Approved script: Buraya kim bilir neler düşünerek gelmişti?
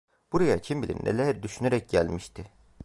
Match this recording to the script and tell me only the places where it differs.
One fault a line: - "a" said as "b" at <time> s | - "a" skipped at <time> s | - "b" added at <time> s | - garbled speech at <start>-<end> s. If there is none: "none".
none